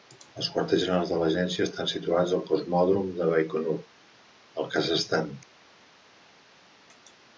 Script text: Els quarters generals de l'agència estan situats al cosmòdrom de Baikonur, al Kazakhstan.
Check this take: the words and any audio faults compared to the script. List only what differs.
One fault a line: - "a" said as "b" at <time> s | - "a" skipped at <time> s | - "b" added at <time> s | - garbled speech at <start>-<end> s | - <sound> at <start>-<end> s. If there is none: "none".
none